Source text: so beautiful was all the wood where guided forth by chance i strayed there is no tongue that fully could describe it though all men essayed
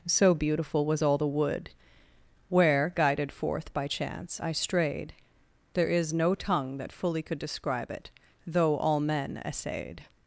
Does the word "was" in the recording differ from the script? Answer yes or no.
no